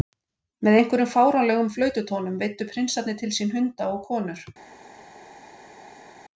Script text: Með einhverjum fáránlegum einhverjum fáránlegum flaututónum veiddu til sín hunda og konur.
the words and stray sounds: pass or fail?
fail